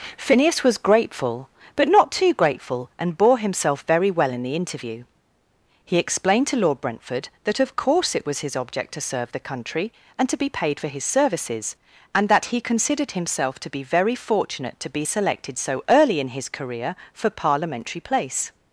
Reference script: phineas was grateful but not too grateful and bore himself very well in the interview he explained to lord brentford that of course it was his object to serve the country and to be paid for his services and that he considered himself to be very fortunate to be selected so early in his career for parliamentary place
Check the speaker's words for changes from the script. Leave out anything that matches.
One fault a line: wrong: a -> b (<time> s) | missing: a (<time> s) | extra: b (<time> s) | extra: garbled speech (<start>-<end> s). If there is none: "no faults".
no faults